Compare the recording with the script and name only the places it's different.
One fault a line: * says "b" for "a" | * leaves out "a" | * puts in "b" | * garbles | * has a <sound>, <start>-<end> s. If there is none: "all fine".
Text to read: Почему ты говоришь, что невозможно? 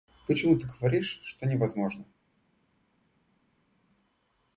all fine